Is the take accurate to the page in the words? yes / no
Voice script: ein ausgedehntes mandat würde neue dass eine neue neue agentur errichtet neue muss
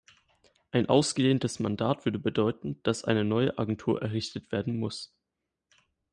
no